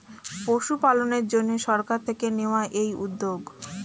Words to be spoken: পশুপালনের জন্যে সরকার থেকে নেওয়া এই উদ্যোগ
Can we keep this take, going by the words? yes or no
yes